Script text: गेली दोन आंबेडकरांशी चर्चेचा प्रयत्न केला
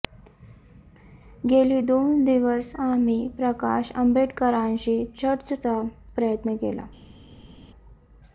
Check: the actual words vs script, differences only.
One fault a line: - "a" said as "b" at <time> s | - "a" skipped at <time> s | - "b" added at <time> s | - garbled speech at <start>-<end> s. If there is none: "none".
- "दिवस आम्ही प्रकाश" added at 2.2 s